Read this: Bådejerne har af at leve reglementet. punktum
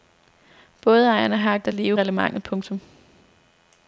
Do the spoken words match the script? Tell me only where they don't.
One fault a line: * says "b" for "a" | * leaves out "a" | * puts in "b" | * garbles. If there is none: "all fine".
all fine